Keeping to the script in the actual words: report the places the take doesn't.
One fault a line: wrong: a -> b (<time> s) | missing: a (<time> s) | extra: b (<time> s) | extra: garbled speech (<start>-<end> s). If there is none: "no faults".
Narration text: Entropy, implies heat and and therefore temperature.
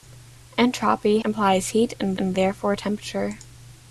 no faults